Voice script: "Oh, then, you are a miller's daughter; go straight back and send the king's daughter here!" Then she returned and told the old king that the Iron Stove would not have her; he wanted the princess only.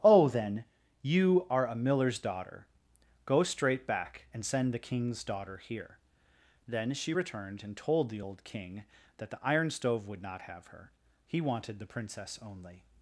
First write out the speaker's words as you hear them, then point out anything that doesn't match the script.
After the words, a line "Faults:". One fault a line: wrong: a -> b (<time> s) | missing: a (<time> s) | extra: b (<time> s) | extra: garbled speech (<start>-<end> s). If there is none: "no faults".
"Oh, then, you are a miller's daughter; go straight back and send the king's daughter here!" Then she returned and told the old king that the Iron Stove would not have her; he wanted the princess only.
Faults:
no faults